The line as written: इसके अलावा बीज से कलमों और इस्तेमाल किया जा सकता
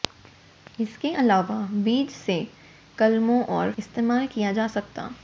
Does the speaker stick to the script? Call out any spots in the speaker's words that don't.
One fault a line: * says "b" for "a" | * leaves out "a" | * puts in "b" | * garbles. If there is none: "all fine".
all fine